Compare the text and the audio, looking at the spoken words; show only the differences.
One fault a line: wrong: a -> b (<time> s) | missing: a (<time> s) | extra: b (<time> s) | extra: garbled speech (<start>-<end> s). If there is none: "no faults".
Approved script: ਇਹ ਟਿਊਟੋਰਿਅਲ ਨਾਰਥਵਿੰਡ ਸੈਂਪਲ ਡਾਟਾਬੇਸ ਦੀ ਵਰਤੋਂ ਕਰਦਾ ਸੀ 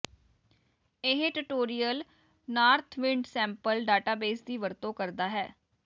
wrong: ਸੀ -> ਹੈ (5.3 s)